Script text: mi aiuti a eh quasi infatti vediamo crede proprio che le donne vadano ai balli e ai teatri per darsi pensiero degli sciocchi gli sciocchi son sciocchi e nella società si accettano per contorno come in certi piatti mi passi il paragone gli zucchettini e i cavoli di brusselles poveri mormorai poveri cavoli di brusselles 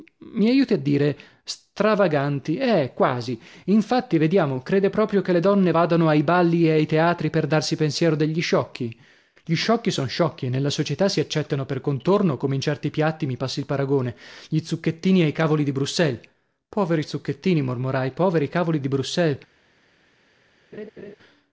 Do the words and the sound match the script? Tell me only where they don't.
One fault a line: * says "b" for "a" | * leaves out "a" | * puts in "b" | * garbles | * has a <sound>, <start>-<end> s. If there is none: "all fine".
* puts in "dire stravaganti"
* puts in "zucchettini"
* has a laugh, 20.7-21.2 s